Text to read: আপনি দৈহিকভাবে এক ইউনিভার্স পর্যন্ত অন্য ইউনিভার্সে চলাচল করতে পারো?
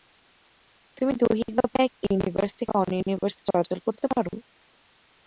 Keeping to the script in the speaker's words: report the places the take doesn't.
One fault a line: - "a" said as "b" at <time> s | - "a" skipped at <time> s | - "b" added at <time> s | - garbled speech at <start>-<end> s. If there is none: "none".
- "আপনি" said as "তুমি" at 1.0 s
- "পর্যন্ত" said as "থেকে" at 2.6 s